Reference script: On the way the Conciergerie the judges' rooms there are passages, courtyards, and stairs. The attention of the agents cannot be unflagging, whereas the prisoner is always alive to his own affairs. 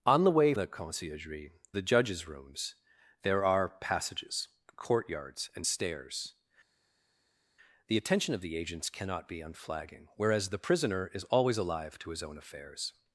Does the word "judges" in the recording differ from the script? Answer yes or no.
no